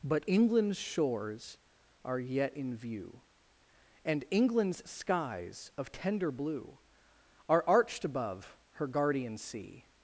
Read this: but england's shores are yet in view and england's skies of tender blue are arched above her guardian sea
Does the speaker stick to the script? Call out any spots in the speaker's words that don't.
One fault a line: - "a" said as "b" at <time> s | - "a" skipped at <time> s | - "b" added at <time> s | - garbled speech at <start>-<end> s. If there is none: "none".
none